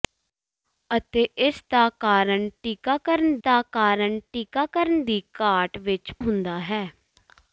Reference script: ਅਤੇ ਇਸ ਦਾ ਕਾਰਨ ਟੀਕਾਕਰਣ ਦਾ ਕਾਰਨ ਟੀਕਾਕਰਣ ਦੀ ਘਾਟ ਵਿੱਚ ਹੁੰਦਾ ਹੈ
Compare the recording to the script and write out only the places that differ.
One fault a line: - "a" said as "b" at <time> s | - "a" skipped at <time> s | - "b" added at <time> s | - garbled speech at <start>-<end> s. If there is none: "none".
none